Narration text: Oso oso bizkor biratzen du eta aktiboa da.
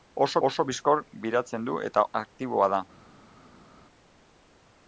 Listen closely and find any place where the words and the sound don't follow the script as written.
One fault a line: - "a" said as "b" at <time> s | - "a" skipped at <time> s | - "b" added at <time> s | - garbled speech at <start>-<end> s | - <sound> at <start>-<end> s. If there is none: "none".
none